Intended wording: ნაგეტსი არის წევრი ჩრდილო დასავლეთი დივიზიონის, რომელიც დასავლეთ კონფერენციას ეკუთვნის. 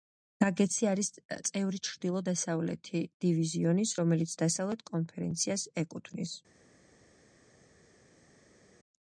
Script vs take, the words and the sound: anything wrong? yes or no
no